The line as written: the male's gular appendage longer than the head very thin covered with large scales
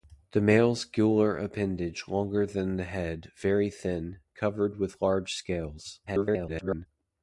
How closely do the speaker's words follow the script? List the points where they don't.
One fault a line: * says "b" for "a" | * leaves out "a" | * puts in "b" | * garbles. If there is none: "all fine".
* garbles